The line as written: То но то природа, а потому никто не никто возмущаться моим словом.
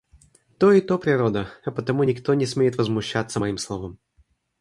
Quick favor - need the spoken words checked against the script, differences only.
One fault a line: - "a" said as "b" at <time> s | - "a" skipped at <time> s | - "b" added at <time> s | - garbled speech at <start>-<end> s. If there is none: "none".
- "но" said as "и" at 0.7 s
- "никто" said as "смеет" at 2.5 s